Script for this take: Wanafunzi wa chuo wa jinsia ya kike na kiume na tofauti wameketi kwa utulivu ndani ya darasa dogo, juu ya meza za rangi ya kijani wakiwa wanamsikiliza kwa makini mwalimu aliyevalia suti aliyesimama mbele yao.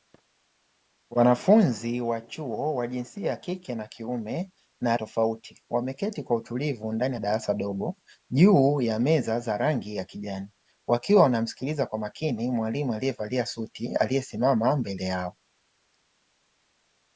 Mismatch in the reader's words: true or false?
false